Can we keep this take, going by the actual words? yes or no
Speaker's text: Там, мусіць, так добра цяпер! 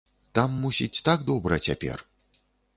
yes